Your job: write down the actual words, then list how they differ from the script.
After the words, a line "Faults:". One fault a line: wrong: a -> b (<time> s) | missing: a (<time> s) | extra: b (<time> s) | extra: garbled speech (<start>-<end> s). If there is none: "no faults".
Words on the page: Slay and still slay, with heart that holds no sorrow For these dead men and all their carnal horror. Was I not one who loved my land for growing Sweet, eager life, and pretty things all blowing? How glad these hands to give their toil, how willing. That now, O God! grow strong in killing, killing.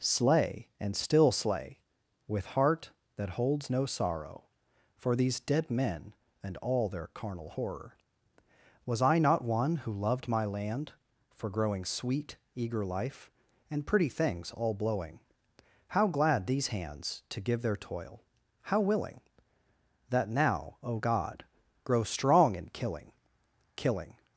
Slay and still slay, with heart that holds no sorrow For these dead men and all their carnal horror. Was I not one who loved my land for growing Sweet, eager life, and pretty things all blowing? How glad these hands to give their toil, how willing. That now, O God! grow strong in killing, killing.
Faults:
no faults